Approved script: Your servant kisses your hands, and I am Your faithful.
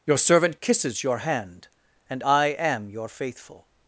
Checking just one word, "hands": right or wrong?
wrong